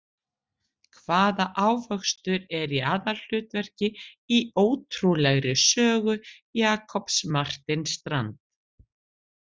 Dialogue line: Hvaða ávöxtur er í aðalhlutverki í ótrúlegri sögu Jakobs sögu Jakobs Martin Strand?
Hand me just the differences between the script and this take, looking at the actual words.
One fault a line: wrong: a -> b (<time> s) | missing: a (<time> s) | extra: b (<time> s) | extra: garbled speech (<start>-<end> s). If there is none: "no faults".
missing: sögu Jakobs (7.2 s)